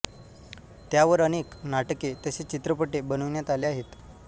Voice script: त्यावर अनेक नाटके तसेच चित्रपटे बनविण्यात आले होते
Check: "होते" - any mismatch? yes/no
yes